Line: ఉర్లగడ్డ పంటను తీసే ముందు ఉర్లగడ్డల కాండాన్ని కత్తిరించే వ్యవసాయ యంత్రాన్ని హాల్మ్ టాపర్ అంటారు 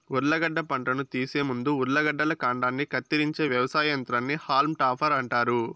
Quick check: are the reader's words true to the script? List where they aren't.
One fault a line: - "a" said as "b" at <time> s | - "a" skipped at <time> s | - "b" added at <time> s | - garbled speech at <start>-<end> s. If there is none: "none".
none